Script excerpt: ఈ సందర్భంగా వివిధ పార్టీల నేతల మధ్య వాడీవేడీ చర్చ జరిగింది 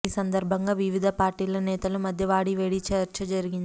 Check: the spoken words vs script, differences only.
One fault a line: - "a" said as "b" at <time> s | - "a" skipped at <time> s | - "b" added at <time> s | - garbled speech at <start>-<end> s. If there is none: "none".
none